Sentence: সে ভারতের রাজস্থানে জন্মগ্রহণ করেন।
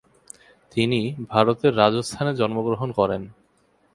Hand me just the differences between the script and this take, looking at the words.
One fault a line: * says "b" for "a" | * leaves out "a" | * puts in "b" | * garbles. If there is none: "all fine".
* says "তিনি" for "সে"